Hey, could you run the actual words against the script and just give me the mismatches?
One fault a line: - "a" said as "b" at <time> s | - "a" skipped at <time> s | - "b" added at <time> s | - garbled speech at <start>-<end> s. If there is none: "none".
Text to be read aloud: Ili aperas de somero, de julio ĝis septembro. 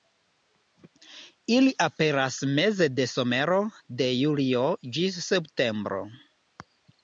- "meze" added at 2.6 s